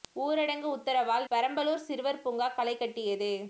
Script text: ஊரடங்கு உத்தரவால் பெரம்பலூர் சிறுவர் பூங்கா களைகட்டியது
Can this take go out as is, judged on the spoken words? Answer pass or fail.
pass